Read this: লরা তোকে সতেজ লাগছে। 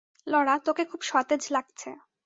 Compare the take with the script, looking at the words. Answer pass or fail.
fail